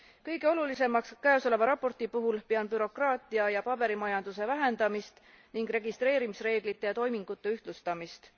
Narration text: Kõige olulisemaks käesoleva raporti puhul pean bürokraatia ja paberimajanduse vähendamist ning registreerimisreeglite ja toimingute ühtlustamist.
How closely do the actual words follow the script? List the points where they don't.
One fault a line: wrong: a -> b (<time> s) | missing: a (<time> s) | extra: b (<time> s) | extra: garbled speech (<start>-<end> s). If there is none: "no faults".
no faults